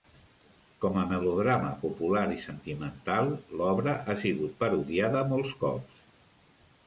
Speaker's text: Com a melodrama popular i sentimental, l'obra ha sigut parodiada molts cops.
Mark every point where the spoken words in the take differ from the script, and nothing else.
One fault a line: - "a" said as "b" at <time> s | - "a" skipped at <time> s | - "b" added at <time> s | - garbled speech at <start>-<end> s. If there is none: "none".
none